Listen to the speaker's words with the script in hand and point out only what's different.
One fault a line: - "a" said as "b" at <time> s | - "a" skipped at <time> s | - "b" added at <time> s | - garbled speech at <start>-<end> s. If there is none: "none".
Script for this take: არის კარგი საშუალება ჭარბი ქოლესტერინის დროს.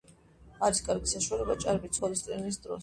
none